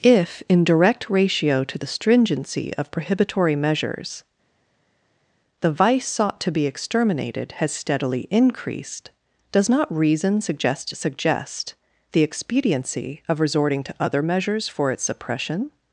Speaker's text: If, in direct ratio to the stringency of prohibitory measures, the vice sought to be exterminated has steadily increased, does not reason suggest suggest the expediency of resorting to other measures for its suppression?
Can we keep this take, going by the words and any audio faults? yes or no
yes